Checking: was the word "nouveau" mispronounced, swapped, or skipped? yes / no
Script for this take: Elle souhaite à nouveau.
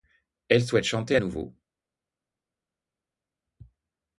no